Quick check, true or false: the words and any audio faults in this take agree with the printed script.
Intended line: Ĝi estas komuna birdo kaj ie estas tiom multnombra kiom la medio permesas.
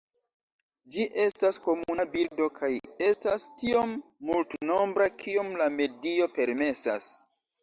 false